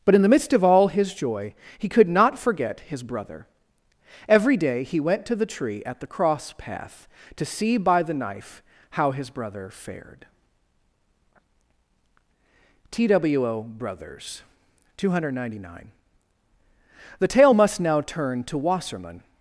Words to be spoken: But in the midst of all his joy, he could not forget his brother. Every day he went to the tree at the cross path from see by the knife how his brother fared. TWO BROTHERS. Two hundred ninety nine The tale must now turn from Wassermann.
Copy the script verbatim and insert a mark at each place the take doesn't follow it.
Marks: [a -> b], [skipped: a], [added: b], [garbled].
But in the midst of all his joy, he could not forget his brother. Every day he went to the tree at the cross path [from -> to] see by the knife how his brother fared. TWO BROTHERS. Two hundred ninety nine The tale must now turn [from -> to] Wassermann.